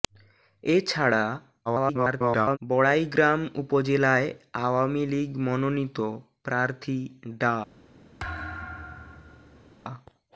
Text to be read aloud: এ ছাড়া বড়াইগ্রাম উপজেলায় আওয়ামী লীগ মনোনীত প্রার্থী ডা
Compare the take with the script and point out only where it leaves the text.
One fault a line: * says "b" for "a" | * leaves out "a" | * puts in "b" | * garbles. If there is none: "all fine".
* garbles